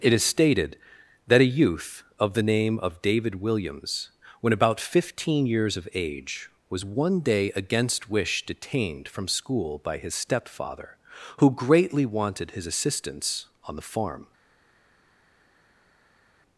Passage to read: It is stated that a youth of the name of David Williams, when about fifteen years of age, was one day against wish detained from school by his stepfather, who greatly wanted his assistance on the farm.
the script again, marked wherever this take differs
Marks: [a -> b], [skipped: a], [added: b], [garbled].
It is stated that a youth of the name of David Williams, when about fifteen years of age, was one day against wish detained from school by his stepfather, who greatly wanted his assistance on the farm.